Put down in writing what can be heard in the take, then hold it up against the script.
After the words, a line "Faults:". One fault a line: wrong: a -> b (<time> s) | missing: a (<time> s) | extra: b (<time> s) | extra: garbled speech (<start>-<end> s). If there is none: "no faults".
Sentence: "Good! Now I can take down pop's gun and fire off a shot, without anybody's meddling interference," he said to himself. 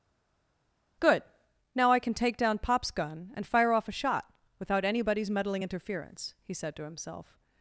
"Good! Now I can take down pop's gun and fire off a shot, without anybody's meddling interference," he said to himself.
Faults:
no faults